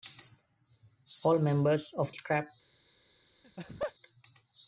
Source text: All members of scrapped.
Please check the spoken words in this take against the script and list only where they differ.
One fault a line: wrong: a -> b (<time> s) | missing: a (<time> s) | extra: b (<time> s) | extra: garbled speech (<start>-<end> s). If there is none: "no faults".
no faults